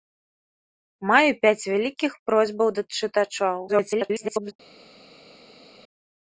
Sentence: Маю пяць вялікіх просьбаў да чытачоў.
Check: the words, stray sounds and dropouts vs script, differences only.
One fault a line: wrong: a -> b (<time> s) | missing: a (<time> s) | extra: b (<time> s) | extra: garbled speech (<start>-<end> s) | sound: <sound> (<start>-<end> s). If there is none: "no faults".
extra: garbled speech (3.7-4.5 s)